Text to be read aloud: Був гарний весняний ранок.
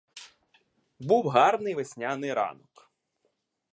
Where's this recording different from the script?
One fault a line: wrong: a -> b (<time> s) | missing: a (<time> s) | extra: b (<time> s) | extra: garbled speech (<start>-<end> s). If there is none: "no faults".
no faults